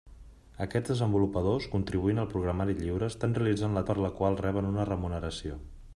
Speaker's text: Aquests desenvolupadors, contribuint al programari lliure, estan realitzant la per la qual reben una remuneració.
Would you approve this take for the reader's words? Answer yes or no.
yes